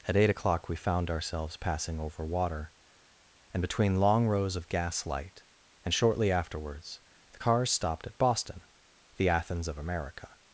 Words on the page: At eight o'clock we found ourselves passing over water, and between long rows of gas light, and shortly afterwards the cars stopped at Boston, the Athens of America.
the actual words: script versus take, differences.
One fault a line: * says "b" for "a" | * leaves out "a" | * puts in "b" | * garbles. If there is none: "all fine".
all fine